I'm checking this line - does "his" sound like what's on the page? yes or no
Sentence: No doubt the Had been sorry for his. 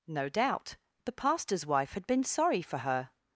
no